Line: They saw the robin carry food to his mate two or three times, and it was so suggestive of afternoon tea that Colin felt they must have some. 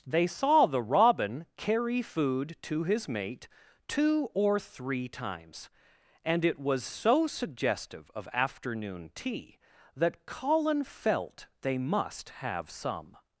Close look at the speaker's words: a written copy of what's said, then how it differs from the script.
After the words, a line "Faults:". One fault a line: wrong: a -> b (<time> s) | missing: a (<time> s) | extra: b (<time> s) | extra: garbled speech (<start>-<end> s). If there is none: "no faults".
They saw the robin carry food to his mate two or three times, and it was so suggestive of afternoon tea that Colin felt they must have some.
Faults:
no faults